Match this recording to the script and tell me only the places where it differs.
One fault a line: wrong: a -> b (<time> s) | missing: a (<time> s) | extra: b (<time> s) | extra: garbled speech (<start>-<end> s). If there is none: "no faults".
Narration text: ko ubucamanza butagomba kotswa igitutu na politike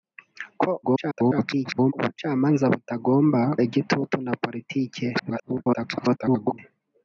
extra: garbled speech (0.8-1.9 s)
missing: kotswa (3.4 s)
extra: garbled speech (5.1-6.6 s)